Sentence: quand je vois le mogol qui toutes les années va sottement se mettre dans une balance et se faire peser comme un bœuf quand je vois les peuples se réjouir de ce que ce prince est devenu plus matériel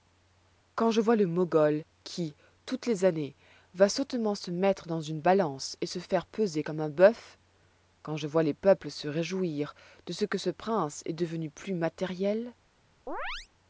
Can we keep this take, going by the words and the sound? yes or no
no